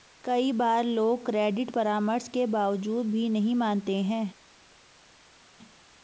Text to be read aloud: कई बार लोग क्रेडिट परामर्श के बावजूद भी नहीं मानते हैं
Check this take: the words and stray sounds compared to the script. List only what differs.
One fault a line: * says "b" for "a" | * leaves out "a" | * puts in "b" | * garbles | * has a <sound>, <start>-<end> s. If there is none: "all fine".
all fine